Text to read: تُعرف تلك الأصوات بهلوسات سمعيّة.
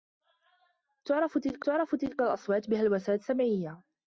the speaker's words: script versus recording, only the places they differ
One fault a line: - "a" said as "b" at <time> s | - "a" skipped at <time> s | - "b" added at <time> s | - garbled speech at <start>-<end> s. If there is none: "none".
- "تُعرف تلك" added at 1.6 s